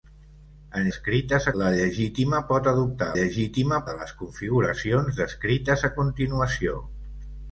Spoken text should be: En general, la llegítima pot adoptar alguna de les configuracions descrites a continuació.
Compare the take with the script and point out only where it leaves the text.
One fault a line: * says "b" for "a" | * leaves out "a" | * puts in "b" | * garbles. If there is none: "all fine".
* says "descrites" for "general"
* says "llegítima" for "alguna"